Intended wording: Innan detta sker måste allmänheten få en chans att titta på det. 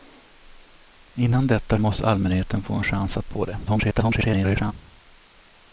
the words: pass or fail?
fail